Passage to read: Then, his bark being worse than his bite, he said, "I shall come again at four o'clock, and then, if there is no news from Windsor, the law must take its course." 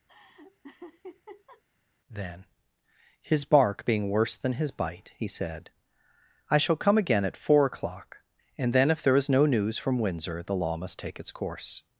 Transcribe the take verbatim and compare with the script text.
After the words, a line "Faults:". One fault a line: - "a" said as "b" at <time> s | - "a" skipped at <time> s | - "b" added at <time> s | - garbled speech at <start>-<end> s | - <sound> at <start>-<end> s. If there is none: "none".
Then, his bark being worse than his bite, he said, "I shall come again at four o'clock, and then, if there is no news from Windsor, the law must take its course."
Faults:
- laugh at 0.1-1.6 s